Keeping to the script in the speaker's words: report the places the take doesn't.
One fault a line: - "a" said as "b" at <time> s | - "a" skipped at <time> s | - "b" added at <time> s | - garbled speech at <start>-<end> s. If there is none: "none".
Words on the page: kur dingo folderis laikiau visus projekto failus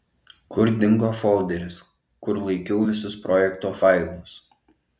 - "kur" added at 2.3 s